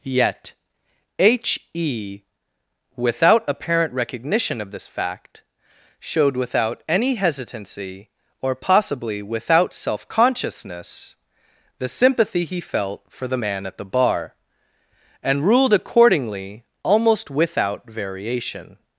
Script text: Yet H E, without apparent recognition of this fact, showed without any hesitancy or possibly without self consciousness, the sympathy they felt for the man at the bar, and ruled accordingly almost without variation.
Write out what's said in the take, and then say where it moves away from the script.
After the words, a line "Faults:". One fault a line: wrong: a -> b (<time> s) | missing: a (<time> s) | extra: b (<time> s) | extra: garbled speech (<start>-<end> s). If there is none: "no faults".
Yet H E, without apparent recognition of this fact, showed without any hesitancy or possibly without self consciousness, the sympathy he felt for the man at the bar, and ruled accordingly almost without variation.
Faults:
wrong: they -> he (12.4 s)